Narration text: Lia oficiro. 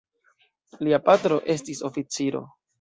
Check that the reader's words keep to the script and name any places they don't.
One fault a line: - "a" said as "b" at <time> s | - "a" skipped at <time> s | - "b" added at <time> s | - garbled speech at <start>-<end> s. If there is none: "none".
- "patro estis" added at 1.1 s